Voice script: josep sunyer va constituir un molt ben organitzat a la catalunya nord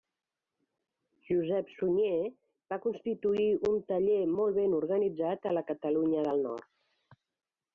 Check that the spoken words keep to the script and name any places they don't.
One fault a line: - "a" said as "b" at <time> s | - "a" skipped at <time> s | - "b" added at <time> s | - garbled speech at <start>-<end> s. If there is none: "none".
- "taller" added at 3.9 s
- "del" added at 6.3 s